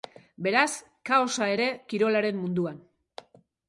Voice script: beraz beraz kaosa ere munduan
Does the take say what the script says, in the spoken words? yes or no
no